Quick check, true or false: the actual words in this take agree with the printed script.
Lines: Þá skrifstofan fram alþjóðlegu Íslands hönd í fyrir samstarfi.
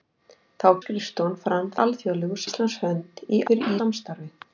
true